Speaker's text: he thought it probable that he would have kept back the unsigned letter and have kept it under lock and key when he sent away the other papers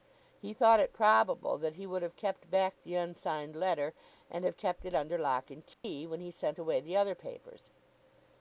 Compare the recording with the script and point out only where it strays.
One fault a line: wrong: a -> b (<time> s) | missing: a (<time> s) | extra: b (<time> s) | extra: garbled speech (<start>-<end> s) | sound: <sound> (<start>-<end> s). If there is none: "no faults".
sound: dropout (5.7-5.8 s)